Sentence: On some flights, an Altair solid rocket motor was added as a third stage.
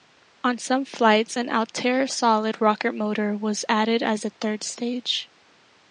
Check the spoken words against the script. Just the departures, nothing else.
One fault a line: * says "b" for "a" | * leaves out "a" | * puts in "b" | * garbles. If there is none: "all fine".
all fine